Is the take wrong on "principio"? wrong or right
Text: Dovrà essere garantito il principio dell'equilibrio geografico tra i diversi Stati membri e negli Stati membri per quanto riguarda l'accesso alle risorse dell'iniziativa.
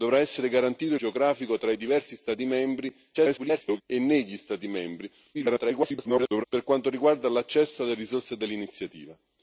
wrong